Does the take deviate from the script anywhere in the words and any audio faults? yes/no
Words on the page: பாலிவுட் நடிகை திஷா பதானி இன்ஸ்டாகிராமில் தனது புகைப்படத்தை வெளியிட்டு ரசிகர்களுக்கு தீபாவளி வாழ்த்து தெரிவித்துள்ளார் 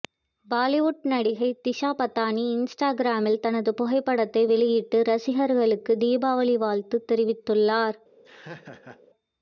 yes